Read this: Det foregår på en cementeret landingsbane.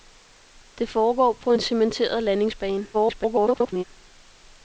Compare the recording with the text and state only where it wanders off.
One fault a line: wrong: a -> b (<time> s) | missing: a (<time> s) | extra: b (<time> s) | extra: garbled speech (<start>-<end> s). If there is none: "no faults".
extra: garbled speech (2.9-3.8 s)